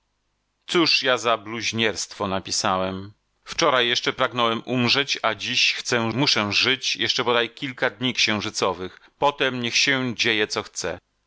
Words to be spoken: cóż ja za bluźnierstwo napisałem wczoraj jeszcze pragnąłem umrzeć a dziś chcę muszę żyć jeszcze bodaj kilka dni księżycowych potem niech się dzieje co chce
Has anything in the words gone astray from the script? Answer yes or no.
no